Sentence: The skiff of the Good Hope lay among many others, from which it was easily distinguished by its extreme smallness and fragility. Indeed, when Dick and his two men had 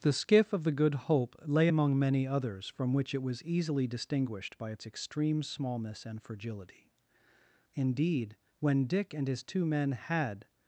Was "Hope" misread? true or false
false